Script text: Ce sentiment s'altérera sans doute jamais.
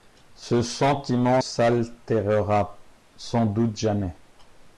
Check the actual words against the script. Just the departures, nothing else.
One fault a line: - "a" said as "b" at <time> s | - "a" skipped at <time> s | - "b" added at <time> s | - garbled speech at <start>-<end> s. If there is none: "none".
none